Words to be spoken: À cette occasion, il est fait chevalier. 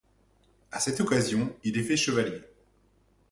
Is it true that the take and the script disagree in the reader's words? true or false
false